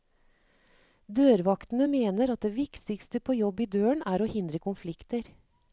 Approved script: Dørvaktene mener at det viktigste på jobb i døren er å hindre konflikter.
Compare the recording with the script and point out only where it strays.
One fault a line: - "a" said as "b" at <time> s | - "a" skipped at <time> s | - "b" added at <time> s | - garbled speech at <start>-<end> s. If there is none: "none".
none